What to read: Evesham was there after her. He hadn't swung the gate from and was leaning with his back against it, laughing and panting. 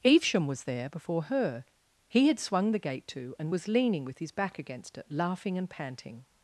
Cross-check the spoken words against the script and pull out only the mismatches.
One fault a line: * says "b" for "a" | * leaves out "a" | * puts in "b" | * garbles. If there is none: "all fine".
* says "before" for "after"
* says "had" for "hadn't"
* says "to" for "from"